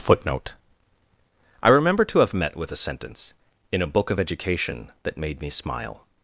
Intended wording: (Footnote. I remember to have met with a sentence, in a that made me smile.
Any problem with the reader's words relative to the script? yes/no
yes